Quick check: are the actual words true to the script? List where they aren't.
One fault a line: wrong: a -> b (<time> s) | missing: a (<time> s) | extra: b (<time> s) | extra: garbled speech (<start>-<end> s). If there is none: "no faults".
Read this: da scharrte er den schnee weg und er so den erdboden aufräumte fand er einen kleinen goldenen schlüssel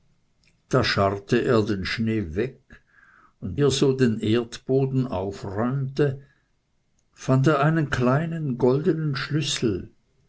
no faults